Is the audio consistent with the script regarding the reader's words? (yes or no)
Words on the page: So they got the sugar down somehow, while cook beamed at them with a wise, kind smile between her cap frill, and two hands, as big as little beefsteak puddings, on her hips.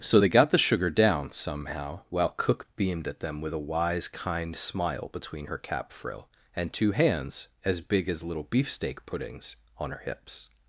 yes